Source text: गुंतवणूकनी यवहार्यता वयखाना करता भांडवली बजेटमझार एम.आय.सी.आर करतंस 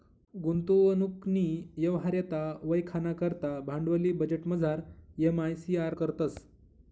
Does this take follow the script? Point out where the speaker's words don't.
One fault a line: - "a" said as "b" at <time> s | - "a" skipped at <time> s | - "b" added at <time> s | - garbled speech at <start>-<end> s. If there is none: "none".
none